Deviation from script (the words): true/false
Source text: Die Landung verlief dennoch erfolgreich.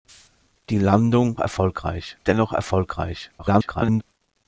true